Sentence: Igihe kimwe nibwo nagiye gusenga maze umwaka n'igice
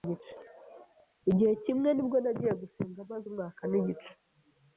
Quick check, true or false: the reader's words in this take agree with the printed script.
true